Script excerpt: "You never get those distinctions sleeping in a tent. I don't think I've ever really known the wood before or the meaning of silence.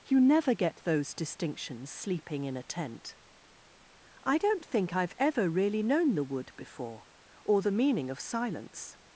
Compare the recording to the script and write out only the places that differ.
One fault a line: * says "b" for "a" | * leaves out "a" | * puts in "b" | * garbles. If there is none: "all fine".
all fine